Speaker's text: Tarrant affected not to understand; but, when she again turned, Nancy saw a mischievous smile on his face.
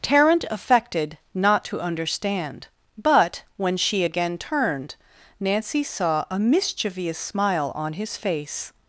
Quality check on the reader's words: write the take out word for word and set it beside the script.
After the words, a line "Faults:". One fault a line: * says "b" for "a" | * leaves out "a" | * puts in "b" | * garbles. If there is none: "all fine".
Tarrant affected not to understand; but, when she again turned, Nancy saw a mischievous smile on his face.
Faults:
all fine